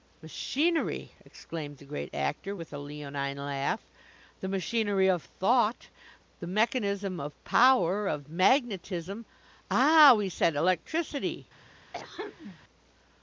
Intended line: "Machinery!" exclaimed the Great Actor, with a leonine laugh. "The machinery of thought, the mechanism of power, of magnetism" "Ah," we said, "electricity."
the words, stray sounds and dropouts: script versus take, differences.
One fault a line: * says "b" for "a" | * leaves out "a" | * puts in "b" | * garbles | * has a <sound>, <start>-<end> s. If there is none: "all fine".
* has a throat clearing, 11.9-12.6 s